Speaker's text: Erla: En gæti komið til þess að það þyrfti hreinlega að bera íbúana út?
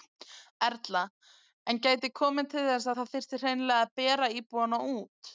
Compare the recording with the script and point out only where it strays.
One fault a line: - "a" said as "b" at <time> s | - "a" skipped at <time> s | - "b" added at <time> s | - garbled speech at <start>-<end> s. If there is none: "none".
none